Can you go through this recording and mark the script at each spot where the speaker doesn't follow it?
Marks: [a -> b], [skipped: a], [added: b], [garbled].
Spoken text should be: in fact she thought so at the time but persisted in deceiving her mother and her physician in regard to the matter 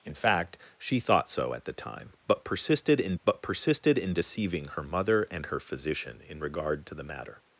in fact she thought so at the time but persisted in [added: but persisted in] deceiving her mother and her physician in regard to the matter